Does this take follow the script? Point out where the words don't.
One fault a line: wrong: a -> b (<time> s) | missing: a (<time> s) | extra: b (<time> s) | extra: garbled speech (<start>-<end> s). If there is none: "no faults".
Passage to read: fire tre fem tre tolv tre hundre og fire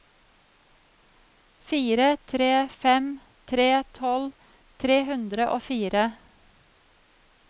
no faults